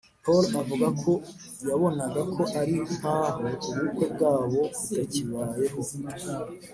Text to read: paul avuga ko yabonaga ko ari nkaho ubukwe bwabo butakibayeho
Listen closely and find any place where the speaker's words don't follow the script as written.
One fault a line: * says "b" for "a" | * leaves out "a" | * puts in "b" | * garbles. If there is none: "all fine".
all fine